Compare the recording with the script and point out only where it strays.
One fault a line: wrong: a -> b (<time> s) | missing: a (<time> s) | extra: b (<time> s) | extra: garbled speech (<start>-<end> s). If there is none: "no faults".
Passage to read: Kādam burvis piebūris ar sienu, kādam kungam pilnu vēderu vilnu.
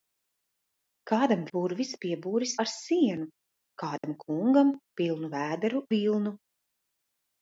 no faults